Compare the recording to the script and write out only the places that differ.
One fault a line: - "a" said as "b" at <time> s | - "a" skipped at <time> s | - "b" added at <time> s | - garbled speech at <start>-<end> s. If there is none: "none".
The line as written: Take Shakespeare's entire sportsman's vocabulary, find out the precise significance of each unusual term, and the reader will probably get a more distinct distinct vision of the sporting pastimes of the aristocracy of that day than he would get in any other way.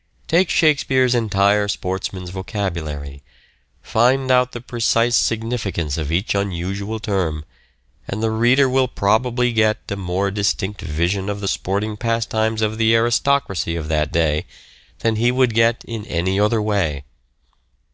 - "distinct" skipped at 10.8 s